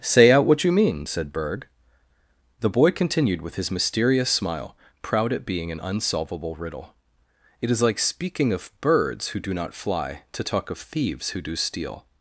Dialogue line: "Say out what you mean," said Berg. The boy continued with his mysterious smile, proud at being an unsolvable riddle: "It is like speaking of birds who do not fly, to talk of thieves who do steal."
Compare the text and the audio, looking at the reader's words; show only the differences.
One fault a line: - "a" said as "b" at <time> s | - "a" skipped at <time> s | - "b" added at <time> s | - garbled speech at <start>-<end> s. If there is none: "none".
none